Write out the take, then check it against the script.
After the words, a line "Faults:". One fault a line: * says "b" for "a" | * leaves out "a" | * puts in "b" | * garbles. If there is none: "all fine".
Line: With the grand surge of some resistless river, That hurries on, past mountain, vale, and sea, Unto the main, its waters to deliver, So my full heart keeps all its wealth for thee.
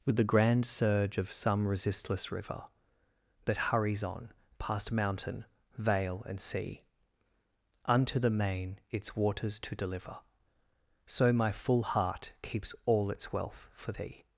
With the grand surge of some resistless river, That hurries on, past mountain, vale, and sea, Unto the main, its waters to deliver, So my full heart keeps all its wealth for thee.
Faults:
all fine